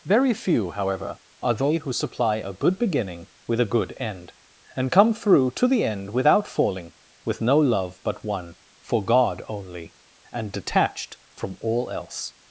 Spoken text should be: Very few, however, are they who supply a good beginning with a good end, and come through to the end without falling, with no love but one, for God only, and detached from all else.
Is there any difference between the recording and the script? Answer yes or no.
no